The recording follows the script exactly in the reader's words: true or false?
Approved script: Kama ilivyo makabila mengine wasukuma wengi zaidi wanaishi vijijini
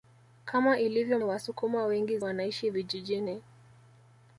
false